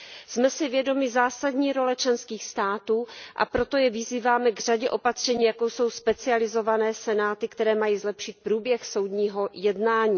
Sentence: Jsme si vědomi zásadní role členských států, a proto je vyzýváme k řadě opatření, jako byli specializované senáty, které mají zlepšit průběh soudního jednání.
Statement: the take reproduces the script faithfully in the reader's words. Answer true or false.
false